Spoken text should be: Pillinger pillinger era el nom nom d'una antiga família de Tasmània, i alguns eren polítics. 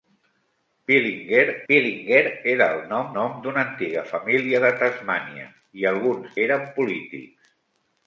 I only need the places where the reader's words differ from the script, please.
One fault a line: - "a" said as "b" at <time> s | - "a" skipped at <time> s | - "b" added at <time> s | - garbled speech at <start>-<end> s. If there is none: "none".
none